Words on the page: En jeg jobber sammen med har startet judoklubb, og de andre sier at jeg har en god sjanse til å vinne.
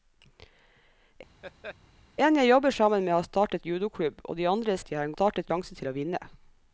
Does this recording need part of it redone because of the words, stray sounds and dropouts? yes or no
yes